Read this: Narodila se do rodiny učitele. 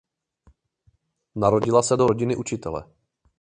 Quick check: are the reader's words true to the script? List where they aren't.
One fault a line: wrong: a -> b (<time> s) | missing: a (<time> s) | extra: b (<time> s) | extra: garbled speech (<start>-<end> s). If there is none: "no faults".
no faults